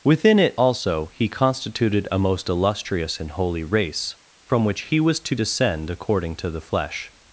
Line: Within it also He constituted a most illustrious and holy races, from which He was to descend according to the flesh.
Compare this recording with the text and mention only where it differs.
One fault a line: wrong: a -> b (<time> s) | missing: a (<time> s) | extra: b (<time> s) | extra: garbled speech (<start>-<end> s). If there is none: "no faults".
wrong: races -> race (3.6 s)